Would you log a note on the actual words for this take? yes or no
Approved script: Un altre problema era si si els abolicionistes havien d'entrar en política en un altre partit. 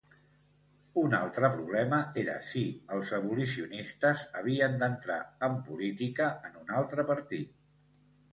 yes